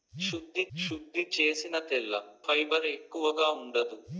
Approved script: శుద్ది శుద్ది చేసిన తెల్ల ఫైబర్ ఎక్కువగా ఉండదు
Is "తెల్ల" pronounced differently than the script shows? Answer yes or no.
no